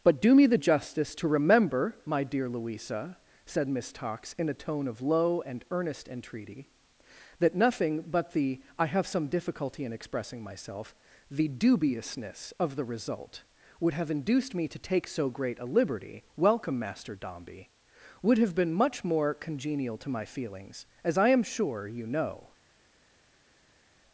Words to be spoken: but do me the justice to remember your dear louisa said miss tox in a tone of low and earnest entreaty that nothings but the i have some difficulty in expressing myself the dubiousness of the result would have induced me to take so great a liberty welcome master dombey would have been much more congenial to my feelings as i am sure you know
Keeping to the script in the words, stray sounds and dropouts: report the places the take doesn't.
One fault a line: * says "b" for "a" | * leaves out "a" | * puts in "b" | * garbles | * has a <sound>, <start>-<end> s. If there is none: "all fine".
* says "my" for "your"
* says "nothing" for "nothings"